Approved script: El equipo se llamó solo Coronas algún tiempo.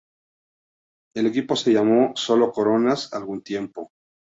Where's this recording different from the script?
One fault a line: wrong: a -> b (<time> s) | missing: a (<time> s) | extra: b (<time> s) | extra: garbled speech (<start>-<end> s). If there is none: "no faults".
no faults